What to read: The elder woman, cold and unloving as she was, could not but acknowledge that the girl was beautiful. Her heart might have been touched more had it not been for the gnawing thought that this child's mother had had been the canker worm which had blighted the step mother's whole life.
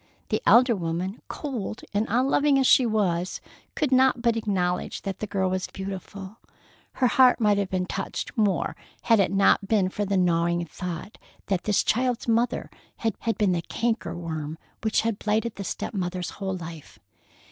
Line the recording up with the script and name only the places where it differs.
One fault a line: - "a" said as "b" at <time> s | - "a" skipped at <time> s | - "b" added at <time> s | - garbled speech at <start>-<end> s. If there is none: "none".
none